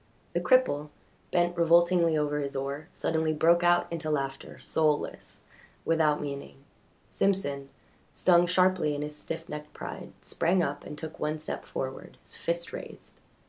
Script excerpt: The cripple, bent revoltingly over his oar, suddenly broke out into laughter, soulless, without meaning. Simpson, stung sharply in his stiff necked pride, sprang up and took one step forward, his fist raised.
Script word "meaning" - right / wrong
right